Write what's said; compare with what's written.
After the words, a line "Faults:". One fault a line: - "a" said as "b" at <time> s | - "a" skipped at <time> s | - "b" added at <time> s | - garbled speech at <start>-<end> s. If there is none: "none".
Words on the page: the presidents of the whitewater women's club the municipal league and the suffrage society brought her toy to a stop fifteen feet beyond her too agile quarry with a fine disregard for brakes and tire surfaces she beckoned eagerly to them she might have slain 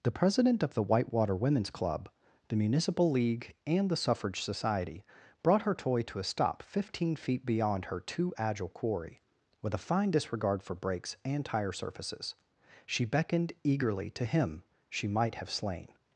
the president of the whitewater women's club the municipal league and the suffrage society brought her toy to a stop fifteen feet beyond her too agile quarry with a fine disregard for brakes and tire surfaces she beckoned eagerly to him she might have slain
Faults:
- "presidents" said as "president" at 0.1 s
- "them" said as "him" at 14.2 s